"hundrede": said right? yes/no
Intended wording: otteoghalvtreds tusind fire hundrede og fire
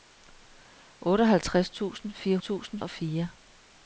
no